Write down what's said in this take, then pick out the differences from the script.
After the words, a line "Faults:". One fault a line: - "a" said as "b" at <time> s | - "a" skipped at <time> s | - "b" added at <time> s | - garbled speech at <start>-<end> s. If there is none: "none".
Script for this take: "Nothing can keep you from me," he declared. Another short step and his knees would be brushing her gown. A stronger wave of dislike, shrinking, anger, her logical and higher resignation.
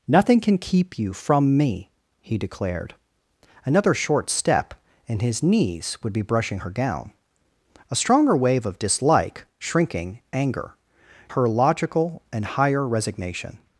"Nothing can keep you from me," he declared. Another short step and his knees would be brushing her gown. A stronger wave of dislike, shrinking, anger, her logical and higher resignation.
Faults:
none